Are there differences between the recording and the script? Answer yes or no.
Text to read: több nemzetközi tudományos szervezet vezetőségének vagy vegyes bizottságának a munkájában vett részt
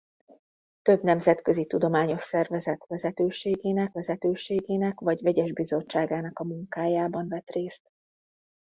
yes